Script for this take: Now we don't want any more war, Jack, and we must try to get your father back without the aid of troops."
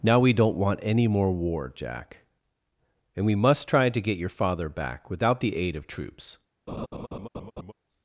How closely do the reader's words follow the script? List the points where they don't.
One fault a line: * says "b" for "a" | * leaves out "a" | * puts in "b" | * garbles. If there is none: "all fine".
all fine